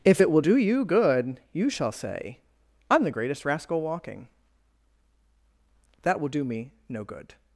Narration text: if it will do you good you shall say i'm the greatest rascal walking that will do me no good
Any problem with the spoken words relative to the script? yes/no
no